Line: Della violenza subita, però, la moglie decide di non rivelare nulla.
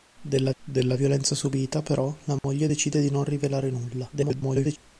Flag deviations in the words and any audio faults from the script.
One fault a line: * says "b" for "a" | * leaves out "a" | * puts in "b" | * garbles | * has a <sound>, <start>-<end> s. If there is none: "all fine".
* puts in "della"
* has a dropout, 2.4-2.4 s
* garbles